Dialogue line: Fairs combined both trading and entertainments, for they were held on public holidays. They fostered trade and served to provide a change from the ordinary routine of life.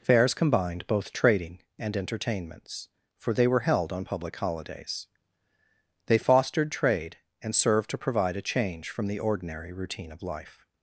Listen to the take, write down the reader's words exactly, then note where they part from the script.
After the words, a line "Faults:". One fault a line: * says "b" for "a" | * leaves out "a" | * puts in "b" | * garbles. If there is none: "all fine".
Fairs combined both trading and entertainments, for they were held on public holidays. They fostered trade and served to provide a change from the ordinary routine of life.
Faults:
all fine